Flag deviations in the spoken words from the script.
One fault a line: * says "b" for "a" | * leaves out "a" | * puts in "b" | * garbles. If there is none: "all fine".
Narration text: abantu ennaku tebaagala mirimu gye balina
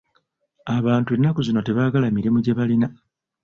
* puts in "zino"